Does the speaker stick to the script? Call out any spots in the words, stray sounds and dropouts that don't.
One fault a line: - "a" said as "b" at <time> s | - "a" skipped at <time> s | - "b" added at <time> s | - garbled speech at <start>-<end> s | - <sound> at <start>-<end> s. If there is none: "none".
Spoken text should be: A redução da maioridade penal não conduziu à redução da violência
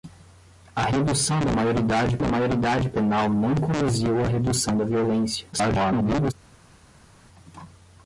- "da maioridade" added at 2.2 s
- garbled speech at 5.5-6.3 s